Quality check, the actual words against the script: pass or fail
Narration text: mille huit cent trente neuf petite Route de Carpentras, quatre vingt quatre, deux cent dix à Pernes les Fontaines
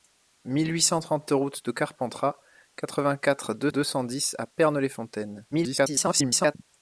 fail